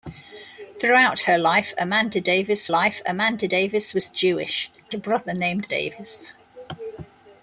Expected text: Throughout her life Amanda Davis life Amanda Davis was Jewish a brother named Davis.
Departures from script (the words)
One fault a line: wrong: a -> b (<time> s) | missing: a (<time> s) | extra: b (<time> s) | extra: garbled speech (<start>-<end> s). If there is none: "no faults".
no faults